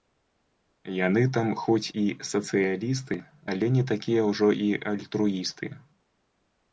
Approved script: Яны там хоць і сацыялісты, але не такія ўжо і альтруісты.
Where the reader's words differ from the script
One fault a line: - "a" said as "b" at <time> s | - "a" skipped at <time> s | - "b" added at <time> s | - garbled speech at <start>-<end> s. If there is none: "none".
none